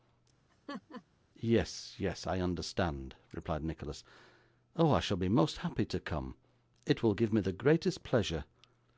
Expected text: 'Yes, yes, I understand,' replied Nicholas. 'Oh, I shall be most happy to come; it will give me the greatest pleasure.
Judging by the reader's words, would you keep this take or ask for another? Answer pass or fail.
pass